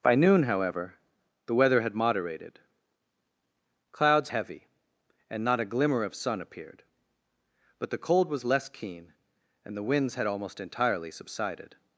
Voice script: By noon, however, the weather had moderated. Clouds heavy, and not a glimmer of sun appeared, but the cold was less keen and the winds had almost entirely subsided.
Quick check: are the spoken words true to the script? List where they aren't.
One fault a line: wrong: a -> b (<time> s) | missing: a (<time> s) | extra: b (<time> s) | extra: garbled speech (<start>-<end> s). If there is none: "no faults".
no faults